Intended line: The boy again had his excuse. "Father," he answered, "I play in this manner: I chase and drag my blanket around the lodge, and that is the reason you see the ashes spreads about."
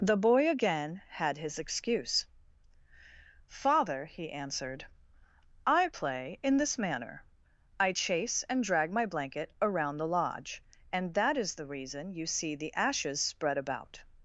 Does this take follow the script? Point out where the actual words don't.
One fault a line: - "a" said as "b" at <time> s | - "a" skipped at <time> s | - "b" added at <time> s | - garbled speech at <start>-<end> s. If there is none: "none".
- "spreads" said as "spread" at 13.2 s